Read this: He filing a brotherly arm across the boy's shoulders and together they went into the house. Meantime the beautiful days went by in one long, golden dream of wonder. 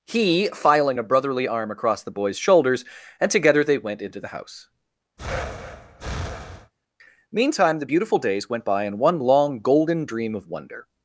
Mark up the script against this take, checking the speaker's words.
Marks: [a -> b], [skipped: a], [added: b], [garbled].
He filing a brotherly arm across the boy's shoulders and together they went into the house. Meantime the beautiful days went by in one long, golden dream of wonder.